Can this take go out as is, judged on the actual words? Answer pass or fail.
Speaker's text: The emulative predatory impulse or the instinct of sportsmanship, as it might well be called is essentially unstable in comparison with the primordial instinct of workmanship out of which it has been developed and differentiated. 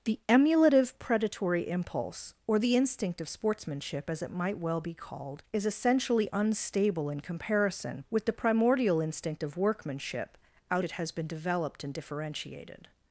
fail